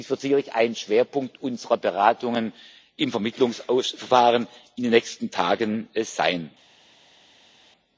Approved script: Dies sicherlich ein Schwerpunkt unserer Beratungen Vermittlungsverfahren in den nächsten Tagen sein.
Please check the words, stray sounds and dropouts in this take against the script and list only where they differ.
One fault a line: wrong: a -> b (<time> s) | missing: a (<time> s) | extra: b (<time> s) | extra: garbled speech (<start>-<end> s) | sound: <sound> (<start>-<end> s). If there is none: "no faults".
extra: wird (0.1 s)
extra: im (3.0 s)